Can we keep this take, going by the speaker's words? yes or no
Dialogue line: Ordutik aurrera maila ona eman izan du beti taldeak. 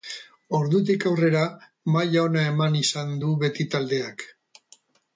yes